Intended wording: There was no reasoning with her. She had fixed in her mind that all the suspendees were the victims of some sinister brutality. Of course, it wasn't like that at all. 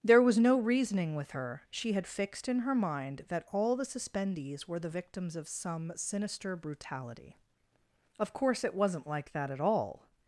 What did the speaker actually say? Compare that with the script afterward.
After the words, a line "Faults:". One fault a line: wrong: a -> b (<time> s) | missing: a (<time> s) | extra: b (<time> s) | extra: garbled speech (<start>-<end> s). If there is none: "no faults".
There was no reasoning with her. She had fixed in her mind that all the suspendees were the victims of some sinister brutality. Of course, it wasn't like that at all.
Faults:
no faults